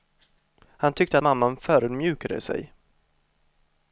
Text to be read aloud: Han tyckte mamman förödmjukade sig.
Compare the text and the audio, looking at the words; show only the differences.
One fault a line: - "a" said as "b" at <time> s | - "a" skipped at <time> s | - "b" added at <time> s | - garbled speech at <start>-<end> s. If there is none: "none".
none